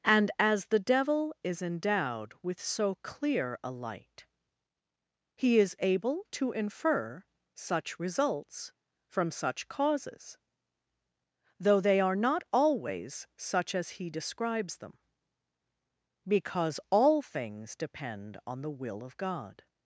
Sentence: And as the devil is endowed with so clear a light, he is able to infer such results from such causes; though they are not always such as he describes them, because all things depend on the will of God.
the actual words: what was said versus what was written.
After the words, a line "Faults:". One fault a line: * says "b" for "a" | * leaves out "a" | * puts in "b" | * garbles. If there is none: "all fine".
And as the devil is endowed with so clear a light, he is able to infer such results from such causes; though they are not always such as he describes them, because all things depend on the will of God.
Faults:
all fine